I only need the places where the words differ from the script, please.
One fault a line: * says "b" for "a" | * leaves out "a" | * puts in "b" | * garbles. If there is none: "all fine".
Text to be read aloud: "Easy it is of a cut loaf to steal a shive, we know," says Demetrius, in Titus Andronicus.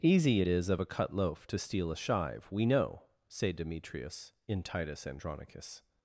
* says "say" for "says"